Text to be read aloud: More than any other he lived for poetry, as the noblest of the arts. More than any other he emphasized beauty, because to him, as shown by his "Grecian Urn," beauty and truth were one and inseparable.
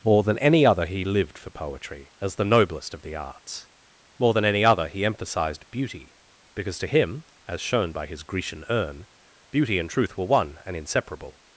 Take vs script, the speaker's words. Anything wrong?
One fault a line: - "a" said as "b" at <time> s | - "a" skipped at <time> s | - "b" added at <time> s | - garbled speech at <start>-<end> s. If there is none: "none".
none